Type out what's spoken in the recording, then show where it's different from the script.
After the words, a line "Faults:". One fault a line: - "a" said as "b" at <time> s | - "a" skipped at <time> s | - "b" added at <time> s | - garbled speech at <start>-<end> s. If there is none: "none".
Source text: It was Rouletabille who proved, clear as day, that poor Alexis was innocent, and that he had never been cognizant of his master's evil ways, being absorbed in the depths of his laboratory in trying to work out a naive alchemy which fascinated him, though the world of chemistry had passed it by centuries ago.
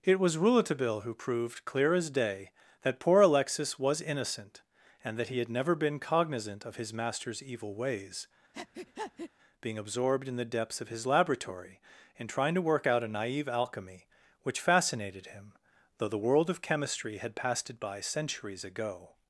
It was Rouletabille who proved, clear as day, that poor Alexis was innocent, and that he had never been cognizant of his master's evil ways, being absorbed in the depths of his laboratory in trying to work out a naive alchemy which fascinated him, though the world of chemistry had passed it by centuries ago.
Faults:
none